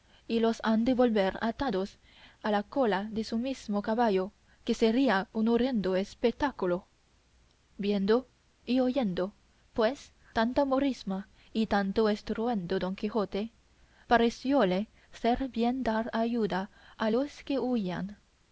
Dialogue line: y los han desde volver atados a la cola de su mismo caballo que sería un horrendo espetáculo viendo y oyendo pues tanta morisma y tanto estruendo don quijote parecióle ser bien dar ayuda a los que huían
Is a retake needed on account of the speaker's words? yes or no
yes